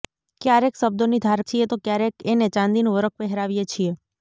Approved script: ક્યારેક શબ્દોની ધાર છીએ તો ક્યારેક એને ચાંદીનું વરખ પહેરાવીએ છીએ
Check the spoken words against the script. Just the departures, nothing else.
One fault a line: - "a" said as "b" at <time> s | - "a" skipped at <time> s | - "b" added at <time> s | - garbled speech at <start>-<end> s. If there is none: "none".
none